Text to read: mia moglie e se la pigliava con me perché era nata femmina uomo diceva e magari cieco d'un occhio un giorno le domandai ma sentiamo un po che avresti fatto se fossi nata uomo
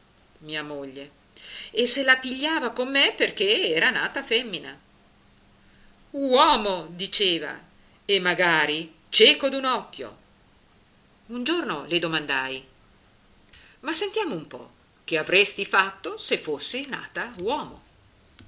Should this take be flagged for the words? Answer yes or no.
no